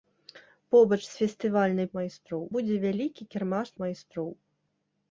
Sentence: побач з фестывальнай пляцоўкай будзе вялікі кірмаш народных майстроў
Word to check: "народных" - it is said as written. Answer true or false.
false